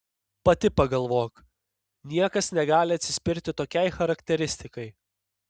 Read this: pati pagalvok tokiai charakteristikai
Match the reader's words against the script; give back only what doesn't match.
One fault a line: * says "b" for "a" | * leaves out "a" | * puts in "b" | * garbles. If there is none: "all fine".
* puts in "niekas negali atsispirti"